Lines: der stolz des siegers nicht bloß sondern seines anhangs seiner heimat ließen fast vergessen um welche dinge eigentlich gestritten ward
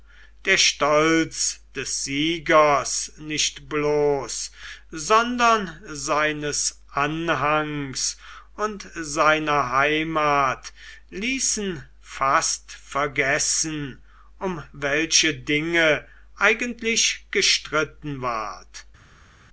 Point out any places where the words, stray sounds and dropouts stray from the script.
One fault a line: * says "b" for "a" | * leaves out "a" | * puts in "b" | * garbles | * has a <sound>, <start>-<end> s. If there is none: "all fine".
* puts in "und"